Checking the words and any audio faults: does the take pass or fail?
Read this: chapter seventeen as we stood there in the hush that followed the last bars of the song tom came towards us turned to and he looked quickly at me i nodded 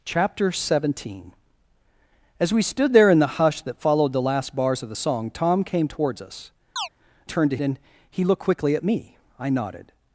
fail